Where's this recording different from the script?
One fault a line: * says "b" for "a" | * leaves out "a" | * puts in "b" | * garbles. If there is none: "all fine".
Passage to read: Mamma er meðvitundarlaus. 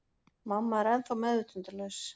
* puts in "ennþá"